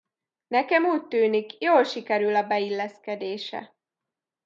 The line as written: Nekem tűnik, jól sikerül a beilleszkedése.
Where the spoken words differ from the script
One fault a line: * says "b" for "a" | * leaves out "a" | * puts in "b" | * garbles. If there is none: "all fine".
* puts in "úgy"